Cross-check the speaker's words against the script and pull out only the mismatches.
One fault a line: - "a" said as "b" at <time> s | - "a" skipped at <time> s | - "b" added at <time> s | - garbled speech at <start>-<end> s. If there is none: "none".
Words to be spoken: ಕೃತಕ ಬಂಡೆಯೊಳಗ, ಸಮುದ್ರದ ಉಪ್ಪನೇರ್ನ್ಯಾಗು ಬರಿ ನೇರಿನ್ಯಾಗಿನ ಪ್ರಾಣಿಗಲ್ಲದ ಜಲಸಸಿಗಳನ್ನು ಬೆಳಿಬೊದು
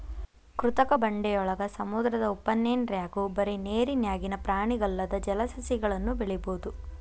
none